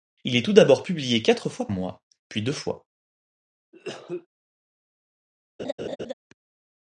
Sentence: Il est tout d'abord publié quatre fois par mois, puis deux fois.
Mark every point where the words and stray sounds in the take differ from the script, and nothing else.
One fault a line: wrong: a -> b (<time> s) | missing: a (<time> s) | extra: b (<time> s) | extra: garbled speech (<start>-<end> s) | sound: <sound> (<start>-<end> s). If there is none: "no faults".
missing: par (1.7 s)
sound: cough (3.7-4.3 s)
sound: laugh (5.6-6.1 s)